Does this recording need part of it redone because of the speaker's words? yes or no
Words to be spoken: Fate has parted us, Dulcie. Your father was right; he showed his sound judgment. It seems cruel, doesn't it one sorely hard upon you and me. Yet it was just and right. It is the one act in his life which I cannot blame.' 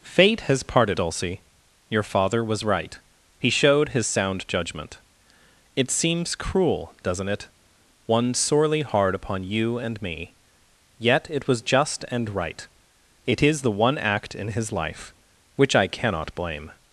yes